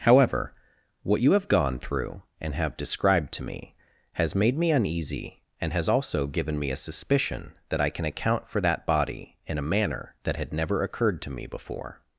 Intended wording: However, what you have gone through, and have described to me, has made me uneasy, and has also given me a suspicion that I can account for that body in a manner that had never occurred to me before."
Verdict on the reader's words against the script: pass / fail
pass